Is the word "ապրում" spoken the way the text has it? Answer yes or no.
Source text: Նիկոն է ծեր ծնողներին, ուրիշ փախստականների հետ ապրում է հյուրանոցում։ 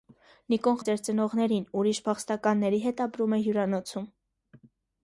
yes